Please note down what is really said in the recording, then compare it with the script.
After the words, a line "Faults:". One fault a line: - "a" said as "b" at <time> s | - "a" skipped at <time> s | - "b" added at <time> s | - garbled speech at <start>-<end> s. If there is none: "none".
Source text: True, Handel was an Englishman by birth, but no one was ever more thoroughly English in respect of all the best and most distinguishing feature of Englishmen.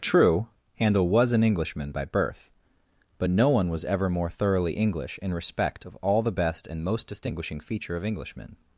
True, Handel was an Englishman by birth, but no one was ever more thoroughly English in respect of all the best and most distinguishing feature of Englishmen.
Faults:
none